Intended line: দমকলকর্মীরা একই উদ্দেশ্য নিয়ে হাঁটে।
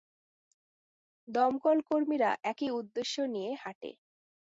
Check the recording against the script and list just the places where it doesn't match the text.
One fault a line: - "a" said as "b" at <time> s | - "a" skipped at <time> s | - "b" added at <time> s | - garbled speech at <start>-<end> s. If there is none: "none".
none